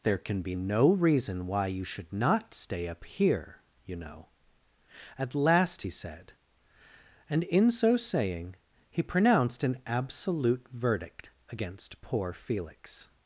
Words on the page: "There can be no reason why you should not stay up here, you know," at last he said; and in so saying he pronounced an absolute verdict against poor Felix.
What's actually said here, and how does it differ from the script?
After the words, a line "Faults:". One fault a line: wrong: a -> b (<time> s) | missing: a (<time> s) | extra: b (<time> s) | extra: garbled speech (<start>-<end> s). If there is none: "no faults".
"There can be no reason why you should not stay up here, you know," at last he said; and in so saying he pronounced an absolute verdict against poor Felix.
Faults:
no faults